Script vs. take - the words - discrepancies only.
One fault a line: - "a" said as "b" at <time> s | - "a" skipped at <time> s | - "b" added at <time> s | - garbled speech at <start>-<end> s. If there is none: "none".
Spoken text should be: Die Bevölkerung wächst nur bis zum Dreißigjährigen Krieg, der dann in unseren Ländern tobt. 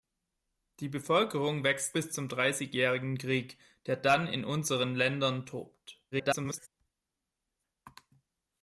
- "nur" skipped at 1.9 s
- garbled speech at 6.1-6.7 s